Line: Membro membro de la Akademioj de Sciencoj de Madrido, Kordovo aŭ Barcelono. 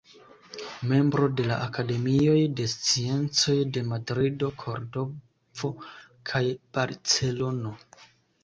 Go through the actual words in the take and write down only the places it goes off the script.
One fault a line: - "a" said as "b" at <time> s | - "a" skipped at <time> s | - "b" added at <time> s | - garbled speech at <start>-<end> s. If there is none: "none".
- "membro" skipped at 1.3 s
- "aŭ" said as "kaj" at 6.3 s